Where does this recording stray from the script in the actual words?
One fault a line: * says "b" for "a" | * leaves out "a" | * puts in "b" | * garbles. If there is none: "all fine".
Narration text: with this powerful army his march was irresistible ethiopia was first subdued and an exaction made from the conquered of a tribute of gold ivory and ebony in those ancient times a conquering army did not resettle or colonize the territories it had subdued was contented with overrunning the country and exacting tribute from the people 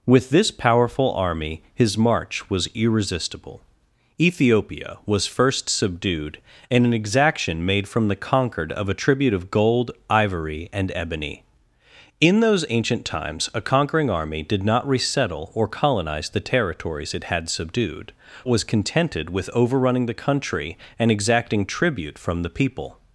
all fine